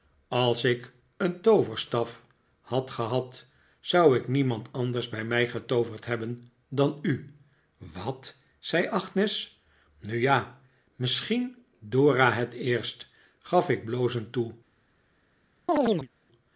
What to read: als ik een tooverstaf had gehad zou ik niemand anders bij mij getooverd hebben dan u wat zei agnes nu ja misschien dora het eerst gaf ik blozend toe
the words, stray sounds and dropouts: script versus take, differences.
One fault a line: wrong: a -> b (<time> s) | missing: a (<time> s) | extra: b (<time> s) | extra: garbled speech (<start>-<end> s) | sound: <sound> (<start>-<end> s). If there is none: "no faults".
sound: chirp (15.7-16.1 s)